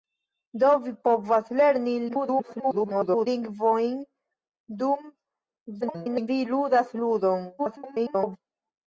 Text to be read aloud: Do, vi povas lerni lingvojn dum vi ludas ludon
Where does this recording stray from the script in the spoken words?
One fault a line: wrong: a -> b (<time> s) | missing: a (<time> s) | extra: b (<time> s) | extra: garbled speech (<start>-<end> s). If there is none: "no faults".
extra: garbled speech (2.1-3.3 s)
extra: garbled speech (5.8-6.3 s)
extra: garbled speech (7.6-8.4 s)